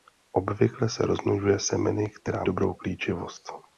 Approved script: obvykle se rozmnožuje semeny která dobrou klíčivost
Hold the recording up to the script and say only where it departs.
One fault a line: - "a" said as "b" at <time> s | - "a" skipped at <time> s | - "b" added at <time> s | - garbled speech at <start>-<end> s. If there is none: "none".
none